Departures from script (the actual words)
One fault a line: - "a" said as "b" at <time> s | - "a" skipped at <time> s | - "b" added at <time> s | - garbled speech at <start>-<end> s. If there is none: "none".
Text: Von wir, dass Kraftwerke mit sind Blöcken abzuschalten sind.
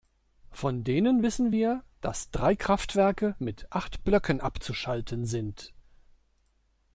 - "denen wissen" added at 0.8 s
- "drei" added at 2.3 s
- "sind" said as "acht" at 3.7 s